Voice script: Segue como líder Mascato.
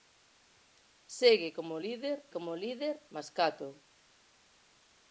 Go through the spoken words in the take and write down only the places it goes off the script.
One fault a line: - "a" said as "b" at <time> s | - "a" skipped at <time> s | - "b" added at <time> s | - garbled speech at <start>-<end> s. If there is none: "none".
- "como líder" added at 2.3 s